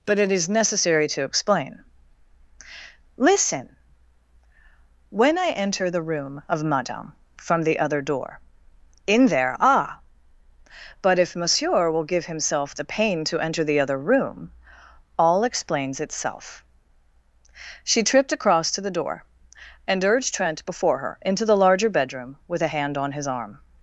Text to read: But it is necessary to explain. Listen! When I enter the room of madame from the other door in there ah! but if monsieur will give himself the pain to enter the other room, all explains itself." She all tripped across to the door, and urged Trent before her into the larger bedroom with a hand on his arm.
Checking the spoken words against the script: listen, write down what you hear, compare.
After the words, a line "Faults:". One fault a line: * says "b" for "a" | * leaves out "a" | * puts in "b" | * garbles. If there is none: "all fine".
But it is necessary to explain. Listen! When I enter the room of madame from the other door in there ah! but if monsieur will give himself the pain to enter the other room, all explains itself." She tripped across to the door, and urged Trent before her into the larger bedroom with a hand on his arm.
Faults:
* leaves out "all"